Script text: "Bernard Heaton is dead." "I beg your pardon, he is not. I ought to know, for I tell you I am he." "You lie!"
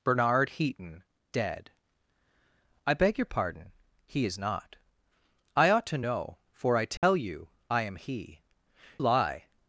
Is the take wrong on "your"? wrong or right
right